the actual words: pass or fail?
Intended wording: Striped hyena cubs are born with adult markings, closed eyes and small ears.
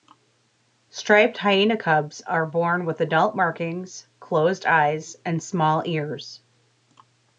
pass